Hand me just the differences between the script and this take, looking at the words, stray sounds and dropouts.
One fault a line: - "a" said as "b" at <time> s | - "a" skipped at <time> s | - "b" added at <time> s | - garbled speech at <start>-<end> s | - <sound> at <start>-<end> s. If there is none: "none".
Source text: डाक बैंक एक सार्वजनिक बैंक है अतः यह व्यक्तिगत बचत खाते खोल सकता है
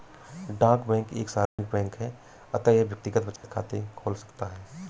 - dropout at 1.5-1.6 s
- dropout at 3.4-3.4 s